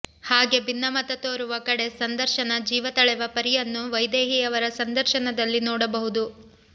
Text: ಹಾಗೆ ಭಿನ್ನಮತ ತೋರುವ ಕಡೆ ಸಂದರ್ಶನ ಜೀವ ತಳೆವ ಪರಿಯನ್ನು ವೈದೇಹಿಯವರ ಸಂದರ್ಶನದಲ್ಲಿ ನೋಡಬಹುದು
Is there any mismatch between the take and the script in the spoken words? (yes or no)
no